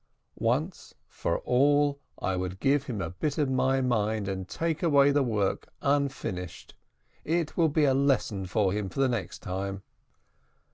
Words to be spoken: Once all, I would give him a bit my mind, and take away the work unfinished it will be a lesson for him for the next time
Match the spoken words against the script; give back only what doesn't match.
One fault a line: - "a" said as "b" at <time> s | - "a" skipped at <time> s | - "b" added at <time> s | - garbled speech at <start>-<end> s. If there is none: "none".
- "for" added at 1.1 s
- "of" added at 3.4 s